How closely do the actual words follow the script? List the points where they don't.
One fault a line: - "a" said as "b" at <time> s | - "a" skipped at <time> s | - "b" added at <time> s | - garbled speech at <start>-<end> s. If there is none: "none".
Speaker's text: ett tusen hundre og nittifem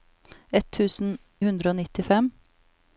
none